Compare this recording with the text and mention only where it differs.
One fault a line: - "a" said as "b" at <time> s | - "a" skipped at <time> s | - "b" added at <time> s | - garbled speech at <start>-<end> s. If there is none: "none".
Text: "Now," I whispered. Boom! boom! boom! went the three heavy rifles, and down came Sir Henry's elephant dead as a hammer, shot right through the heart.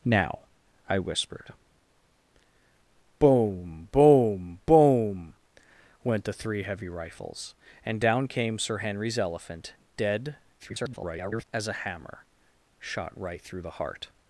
- garbled speech at 10.6-11.4 s